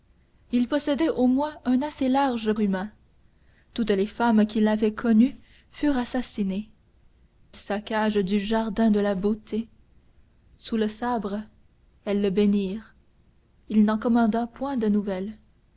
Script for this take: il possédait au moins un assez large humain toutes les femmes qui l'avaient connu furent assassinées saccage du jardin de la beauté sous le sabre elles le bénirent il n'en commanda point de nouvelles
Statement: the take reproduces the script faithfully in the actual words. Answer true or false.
true